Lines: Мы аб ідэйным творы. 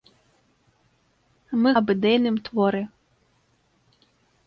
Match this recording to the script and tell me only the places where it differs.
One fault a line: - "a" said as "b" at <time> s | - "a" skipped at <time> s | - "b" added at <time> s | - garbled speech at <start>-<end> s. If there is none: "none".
none